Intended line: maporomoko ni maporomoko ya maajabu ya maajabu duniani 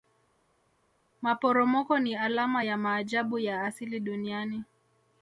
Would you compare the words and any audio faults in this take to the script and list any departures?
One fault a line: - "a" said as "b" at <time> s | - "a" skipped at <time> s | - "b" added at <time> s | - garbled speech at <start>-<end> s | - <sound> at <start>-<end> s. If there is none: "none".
- "maporomoko" said as "alama" at 2.1 s
- "maajabu" said as "asili" at 3.6 s